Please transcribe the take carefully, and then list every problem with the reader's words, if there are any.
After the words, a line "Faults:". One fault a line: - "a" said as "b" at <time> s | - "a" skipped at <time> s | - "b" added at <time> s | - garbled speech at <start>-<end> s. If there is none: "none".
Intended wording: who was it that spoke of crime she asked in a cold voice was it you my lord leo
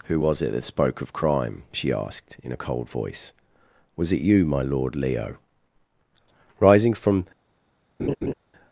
who was it that spoke of crime she asked in a cold voice was it you my lord leo rising from
Faults:
- "rising from" added at 6.6 s